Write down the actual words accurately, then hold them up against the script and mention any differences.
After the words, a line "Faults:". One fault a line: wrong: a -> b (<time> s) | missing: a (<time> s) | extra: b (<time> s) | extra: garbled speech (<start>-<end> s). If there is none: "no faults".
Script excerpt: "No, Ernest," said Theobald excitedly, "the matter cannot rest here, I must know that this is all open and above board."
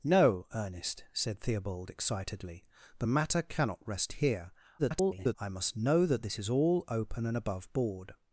"No, Ernest," said Theobald excitedly, "the matter cannot rest here, [garbled] I must know that this is all open and above board."
Faults:
extra: garbled speech (4.8-5.4 s)